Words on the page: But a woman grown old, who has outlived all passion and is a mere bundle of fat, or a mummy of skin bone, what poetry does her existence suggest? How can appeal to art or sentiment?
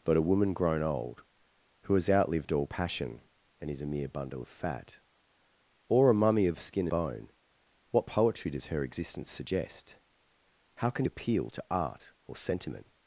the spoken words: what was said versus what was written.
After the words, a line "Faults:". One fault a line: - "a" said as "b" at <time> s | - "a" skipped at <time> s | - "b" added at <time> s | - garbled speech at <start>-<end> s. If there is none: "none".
But a woman grown old, who has outlived all passion and is a mere bundle of fat, or a mummy of skin bone, what poetry does her existence suggest? How can appeal to art or sentiment?
Faults:
none